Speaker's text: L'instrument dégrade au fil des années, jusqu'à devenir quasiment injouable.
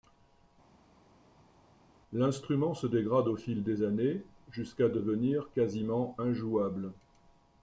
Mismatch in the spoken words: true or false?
true